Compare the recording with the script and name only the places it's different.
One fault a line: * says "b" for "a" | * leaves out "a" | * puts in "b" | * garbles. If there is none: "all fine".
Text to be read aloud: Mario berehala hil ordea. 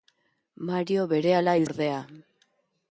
all fine